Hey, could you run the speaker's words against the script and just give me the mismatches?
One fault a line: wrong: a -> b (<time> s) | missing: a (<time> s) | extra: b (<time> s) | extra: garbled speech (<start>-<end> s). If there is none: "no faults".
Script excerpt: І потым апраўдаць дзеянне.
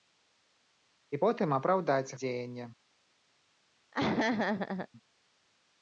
no faults